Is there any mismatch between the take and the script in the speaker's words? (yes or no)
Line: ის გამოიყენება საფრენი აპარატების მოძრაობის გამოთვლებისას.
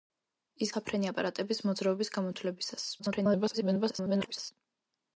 yes